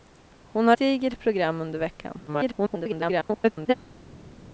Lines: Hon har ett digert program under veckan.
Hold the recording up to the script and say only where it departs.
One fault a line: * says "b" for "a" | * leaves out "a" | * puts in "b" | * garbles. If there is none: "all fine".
* leaves out "ett"
* garbles